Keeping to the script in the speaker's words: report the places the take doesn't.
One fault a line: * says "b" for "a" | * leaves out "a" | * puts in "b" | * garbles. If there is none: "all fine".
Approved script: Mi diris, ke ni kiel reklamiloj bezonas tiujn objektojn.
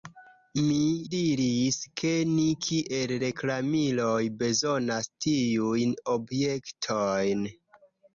all fine